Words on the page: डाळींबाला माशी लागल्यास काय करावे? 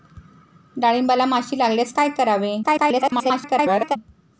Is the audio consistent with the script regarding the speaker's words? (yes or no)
no